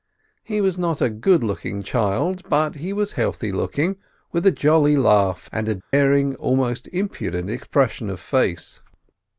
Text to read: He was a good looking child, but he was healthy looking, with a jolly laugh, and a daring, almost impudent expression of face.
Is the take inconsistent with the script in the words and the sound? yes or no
yes